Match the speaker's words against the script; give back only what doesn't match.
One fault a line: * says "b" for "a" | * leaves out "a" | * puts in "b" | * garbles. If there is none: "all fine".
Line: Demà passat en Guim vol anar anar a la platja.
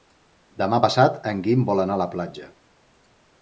* leaves out "anar"